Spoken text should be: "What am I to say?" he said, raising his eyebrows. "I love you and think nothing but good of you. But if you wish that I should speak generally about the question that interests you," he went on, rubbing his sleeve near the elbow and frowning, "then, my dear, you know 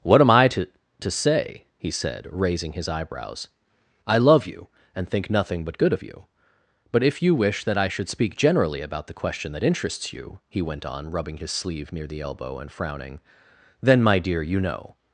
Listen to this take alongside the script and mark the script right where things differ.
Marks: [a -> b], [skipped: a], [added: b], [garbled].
"What am I to [added: to] say?" he said, raising his eyebrows. "I love you and think nothing but good of you. But if you wish that I should speak generally about the question that interests you," he went on, rubbing his sleeve near the elbow and frowning, "then, my dear, you know